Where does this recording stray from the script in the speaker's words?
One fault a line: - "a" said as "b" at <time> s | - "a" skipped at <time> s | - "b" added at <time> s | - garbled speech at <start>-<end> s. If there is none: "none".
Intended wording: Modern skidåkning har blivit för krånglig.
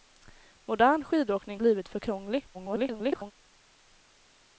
- "har" skipped at 1.6 s
- garbled speech at 2.5-3.3 s